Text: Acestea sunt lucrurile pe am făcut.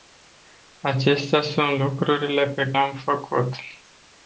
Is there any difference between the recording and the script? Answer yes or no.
no